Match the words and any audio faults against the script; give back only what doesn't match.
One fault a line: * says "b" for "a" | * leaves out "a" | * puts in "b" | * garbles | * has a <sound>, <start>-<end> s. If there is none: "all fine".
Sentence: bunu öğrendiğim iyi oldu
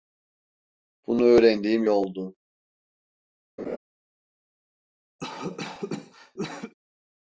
* leaves out "iyi"
* has a laugh, 3.6-3.8 s
* has a cough, 5.2-6.7 s